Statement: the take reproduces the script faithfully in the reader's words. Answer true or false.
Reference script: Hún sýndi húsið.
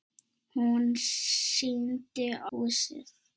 true